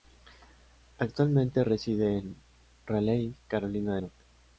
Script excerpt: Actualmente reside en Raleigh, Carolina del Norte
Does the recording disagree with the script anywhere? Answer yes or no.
yes